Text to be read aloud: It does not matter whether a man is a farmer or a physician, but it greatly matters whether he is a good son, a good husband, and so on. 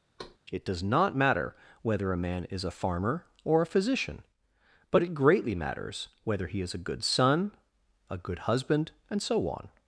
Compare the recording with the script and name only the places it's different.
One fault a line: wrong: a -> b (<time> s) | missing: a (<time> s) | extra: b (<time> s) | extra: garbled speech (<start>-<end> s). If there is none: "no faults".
no faults